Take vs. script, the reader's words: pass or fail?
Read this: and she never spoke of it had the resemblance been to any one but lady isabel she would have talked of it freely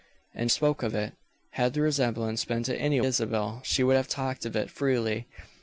fail